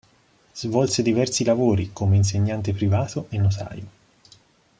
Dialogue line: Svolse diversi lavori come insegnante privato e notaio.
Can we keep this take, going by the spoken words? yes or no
yes